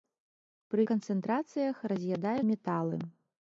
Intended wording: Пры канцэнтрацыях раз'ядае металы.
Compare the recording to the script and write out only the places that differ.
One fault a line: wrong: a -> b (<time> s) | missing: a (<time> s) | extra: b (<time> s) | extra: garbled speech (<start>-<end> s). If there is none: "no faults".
no faults